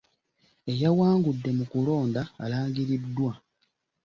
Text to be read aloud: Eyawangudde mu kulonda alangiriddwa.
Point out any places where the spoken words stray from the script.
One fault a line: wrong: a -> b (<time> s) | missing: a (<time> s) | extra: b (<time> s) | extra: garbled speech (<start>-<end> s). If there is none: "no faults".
no faults